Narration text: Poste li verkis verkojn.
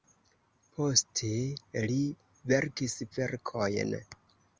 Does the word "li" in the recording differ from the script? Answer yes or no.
no